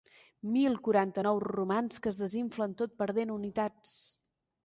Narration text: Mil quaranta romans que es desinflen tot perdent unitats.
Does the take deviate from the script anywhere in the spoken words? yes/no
yes